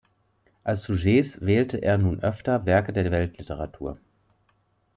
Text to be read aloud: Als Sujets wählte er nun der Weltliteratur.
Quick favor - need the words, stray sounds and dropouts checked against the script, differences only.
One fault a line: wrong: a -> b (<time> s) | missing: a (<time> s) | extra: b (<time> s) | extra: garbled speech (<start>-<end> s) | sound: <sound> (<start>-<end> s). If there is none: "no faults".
extra: öfter Werke (2.2 s)